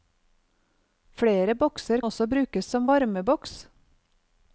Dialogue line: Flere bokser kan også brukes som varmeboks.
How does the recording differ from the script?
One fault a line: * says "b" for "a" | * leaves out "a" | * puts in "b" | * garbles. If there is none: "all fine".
* leaves out "kan"